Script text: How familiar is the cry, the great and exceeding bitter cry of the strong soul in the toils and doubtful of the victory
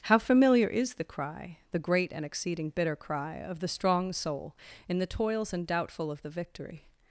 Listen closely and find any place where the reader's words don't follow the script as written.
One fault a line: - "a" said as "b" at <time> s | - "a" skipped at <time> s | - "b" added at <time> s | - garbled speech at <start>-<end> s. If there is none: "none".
none